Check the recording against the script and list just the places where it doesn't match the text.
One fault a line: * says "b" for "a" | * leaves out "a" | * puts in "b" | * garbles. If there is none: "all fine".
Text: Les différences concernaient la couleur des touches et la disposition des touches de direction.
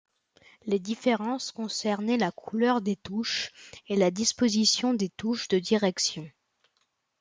all fine